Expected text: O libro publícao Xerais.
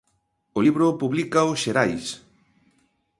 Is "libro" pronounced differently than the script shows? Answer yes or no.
no